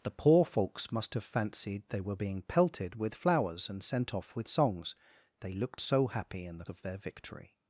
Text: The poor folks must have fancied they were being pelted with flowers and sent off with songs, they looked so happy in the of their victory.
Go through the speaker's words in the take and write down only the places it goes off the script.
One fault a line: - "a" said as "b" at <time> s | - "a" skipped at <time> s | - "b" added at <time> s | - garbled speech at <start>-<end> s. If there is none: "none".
none